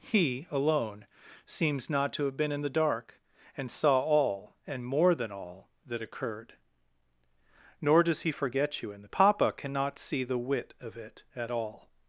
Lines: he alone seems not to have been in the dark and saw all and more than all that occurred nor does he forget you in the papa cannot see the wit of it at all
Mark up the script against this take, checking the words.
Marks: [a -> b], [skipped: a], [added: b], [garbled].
he alone seems not to have been in the dark and saw all and more than all that occurred nor does he forget you in the papa cannot see the wit of it at all